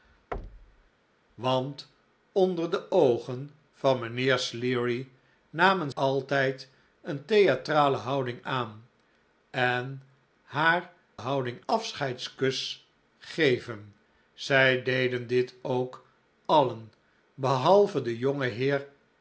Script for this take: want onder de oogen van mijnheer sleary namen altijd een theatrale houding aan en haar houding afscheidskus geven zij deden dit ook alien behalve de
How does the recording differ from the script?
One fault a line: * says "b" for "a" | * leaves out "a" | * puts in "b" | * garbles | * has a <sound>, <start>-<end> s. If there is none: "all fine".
* has a thud, 0.3-0.9 s